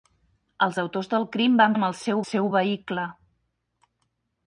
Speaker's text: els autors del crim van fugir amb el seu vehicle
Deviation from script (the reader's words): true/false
true